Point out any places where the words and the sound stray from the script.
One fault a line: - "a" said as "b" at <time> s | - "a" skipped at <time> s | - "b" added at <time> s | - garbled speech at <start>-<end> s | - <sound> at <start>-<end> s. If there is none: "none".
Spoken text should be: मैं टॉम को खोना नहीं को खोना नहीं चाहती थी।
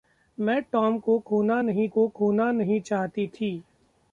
none